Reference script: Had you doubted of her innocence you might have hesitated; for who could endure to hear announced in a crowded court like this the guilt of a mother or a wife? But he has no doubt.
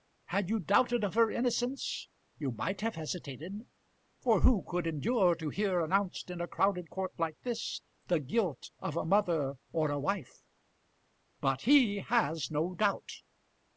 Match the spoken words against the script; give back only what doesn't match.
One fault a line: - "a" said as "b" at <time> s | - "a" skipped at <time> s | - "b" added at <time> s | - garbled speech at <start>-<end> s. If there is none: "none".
none